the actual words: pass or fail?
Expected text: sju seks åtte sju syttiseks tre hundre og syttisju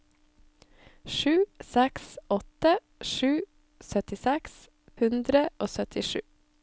fail